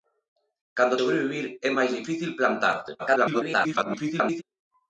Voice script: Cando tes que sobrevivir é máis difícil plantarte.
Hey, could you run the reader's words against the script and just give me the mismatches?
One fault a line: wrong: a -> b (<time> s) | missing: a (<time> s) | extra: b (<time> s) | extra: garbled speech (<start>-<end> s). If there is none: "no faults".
missing: tes que (1.0 s)
extra: garbled speech (3.0-4.4 s)